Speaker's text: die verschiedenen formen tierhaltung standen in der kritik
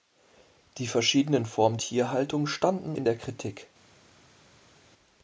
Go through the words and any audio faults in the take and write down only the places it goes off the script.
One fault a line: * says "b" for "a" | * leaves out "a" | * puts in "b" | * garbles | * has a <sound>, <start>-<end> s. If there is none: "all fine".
all fine